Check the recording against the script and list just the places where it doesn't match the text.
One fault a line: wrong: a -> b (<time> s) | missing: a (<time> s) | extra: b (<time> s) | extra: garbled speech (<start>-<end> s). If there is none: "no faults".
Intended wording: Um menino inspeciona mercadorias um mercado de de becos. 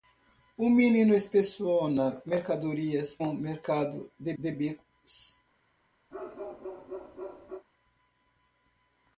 no faults